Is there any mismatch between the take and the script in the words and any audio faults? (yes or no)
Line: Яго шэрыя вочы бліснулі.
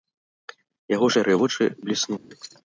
yes